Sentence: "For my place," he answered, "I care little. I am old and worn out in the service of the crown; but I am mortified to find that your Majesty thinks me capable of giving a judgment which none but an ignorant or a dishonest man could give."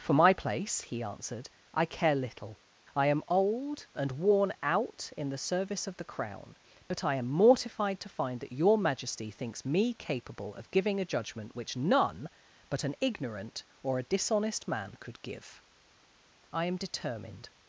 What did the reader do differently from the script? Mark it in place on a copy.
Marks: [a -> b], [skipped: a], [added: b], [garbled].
"For my place," he answered, "I care little. I am old and worn out in the service of the crown; but I am mortified to find that your Majesty thinks me capable of giving a judgment which none but an ignorant or a dishonest man could give." [added: I am determined]